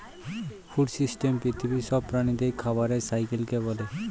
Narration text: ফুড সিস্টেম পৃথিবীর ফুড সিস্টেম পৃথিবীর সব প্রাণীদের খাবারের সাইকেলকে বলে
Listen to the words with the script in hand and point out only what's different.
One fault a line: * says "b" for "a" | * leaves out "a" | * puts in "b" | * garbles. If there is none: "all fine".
* leaves out "ফুড সিস্টেম পৃথিবীর"